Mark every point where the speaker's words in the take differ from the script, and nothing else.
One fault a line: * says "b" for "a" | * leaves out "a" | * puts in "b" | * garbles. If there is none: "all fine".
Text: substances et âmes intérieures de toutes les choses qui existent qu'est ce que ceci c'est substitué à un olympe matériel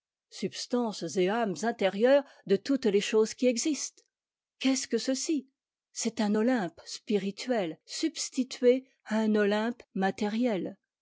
* puts in "un olympe spirituel"